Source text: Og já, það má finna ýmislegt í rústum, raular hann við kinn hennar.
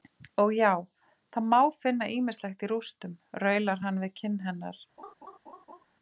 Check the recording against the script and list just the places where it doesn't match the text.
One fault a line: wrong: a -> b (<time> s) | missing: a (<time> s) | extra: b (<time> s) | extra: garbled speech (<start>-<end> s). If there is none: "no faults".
no faults